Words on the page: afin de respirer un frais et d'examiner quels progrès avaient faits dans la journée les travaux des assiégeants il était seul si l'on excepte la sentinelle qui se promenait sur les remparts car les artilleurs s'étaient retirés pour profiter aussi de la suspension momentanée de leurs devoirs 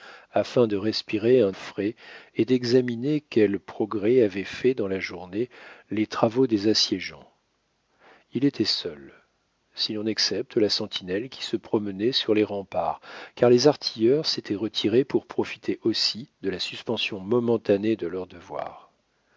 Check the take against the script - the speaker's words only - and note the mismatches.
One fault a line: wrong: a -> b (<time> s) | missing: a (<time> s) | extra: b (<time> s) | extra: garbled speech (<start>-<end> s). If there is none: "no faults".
no faults